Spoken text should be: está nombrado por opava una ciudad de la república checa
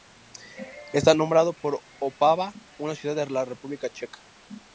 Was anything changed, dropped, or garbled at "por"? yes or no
no